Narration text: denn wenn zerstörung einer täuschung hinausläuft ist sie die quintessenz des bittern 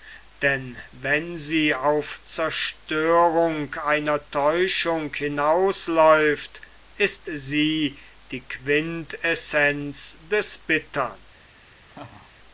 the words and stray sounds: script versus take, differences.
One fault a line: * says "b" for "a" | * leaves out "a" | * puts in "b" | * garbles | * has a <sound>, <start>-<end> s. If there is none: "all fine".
* puts in "sie auf"
* has a laugh, 11.9-12.3 s